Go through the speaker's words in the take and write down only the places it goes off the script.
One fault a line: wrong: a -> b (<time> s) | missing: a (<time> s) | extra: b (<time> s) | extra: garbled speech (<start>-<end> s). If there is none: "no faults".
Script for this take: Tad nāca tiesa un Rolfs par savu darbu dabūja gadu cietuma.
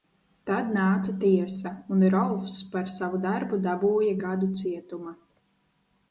no faults